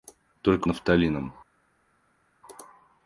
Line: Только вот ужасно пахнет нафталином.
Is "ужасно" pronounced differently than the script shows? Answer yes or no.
yes